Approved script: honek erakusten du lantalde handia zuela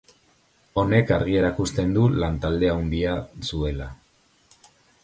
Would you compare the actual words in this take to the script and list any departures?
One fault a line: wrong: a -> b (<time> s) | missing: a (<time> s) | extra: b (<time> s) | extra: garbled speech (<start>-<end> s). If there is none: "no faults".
extra: argi (1.2 s)